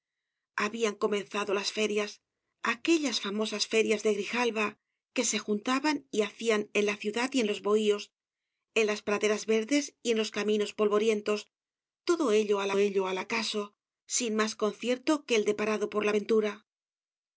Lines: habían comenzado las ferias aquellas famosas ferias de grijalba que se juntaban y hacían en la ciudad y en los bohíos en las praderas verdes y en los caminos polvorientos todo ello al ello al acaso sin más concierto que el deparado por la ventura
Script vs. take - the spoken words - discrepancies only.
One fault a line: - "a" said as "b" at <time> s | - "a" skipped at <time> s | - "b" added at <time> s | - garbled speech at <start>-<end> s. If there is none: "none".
none